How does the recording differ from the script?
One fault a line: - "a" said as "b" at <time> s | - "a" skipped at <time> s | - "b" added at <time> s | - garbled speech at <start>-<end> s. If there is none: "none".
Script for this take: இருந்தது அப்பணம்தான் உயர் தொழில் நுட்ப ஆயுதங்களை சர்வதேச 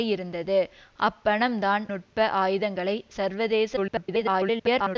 - "உயர் தொழில்" skipped at 1.9 s
- garbled speech at 3.8-5.0 s